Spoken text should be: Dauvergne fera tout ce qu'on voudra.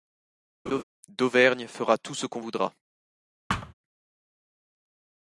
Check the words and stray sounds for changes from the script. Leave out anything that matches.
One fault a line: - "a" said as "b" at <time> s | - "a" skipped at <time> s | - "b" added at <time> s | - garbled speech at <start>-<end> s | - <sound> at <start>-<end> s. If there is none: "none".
- laugh at 0.7-0.8 s
- thud at 3.5-3.7 s